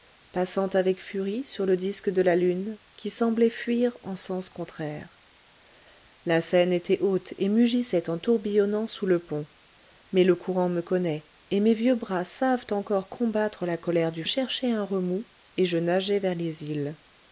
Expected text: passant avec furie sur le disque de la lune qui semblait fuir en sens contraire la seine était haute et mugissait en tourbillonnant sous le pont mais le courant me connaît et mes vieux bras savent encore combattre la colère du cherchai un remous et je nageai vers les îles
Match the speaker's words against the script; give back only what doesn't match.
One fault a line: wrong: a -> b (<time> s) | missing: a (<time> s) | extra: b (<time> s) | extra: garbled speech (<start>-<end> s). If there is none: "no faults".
no faults